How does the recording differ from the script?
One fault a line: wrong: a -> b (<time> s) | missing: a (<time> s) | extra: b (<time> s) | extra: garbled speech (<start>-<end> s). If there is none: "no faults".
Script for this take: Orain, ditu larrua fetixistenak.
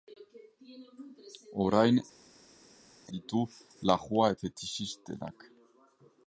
no faults